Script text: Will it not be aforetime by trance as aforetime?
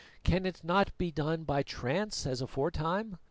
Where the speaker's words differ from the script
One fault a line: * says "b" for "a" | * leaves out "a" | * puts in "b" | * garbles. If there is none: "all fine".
* says "Can" for "Will"
* says "done" for "aforetime"